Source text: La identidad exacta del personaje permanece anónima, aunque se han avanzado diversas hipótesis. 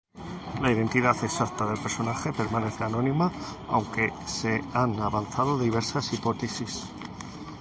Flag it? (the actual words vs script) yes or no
no